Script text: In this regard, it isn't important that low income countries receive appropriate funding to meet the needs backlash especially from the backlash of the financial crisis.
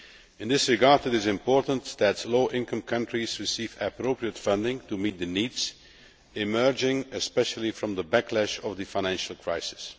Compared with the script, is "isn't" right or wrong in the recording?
wrong